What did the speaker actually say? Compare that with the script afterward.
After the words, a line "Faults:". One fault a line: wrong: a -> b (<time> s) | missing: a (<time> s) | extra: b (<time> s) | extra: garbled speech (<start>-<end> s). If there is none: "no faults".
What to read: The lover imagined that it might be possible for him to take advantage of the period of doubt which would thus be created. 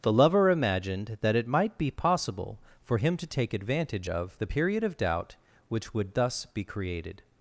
The lover imagined that it might be possible for him to take advantage of the period of doubt which would thus be created.
Faults:
no faults